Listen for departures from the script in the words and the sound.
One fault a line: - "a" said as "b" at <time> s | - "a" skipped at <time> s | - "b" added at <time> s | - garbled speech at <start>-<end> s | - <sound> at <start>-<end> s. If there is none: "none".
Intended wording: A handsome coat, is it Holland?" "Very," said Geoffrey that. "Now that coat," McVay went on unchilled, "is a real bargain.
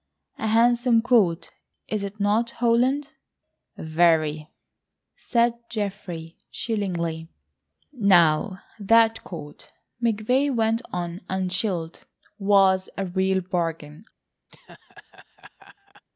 - "not" added at 2.2 s
- "that" said as "chillingly" at 6.5 s
- "is" said as "was" at 12.4 s
- laugh at 14.5-16.0 s